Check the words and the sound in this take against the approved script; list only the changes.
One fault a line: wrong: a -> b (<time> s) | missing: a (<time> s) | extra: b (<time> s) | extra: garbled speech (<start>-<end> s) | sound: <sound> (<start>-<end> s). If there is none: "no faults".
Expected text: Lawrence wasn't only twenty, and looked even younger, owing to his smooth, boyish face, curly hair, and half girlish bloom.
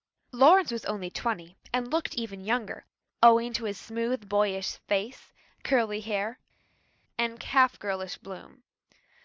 wrong: wasn't -> was (0.7 s)